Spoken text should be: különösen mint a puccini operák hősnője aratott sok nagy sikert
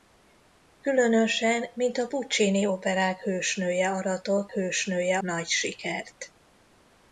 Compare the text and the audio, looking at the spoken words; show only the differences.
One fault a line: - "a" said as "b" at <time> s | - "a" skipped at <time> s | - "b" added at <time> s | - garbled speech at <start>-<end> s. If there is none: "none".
- "sok" said as "hősnője" at 4.5 s